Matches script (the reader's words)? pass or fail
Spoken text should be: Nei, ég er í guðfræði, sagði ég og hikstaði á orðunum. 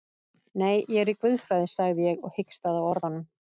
pass